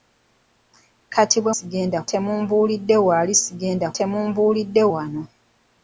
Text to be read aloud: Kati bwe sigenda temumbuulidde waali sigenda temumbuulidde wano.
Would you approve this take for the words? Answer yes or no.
yes